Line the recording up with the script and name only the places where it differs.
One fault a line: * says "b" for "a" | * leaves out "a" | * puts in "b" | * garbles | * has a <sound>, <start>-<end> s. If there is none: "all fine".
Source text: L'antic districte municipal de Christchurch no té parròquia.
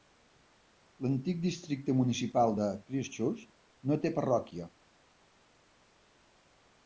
all fine